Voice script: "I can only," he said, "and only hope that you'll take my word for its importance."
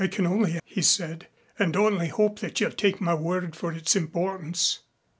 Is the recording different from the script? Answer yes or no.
no